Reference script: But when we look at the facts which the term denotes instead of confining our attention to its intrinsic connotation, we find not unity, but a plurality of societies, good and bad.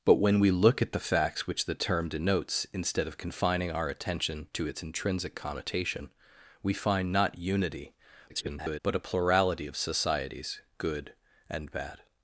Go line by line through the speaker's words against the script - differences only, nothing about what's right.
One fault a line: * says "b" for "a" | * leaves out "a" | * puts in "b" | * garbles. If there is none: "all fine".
* garbles